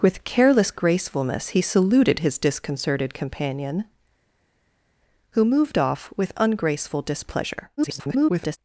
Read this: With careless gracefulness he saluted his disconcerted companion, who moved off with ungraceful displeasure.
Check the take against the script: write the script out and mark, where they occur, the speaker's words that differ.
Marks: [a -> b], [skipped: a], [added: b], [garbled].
With careless gracefulness he saluted his disconcerted companion, who moved off with ungraceful displeasure. [garbled]